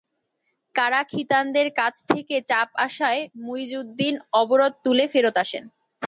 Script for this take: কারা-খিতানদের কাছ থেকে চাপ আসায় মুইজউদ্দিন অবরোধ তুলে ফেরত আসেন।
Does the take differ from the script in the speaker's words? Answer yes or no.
no